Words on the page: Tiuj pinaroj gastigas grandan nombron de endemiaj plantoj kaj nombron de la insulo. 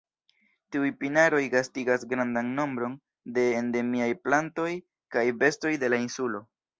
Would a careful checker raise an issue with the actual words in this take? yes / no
yes